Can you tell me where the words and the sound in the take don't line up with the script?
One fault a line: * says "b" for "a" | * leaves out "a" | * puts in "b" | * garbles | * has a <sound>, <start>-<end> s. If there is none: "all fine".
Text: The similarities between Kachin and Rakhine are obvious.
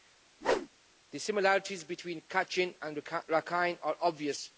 * has a whoosh, 0.4-0.7 s